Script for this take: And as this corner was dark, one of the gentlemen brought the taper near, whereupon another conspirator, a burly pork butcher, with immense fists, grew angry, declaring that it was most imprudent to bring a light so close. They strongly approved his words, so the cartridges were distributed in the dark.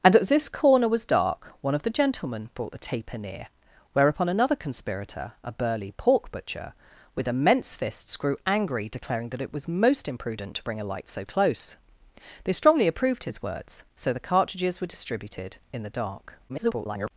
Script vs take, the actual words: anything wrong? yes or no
yes